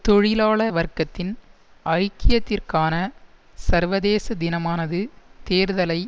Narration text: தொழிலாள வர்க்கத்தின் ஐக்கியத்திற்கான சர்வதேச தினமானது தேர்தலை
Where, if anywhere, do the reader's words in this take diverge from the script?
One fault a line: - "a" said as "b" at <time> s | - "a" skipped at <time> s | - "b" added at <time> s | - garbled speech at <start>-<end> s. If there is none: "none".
none